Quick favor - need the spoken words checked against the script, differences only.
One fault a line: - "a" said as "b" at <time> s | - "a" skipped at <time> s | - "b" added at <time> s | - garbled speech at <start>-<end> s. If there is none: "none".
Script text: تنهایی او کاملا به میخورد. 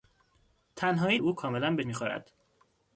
none